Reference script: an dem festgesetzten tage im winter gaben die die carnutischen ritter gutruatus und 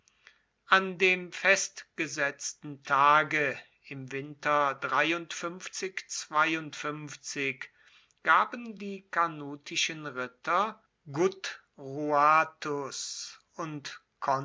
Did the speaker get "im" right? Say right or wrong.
right